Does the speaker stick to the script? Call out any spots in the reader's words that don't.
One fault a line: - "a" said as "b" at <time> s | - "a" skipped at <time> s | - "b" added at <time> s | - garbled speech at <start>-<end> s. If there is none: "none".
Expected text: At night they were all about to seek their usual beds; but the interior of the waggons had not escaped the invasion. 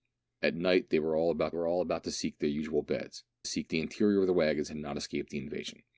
- "were all about" added at 1.5 s
- "but" said as "seek" at 3.4 s